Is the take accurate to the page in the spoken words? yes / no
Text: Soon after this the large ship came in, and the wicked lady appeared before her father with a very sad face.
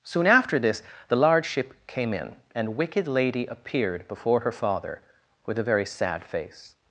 no